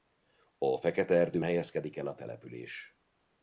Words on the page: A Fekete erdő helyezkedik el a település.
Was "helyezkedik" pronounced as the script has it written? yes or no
yes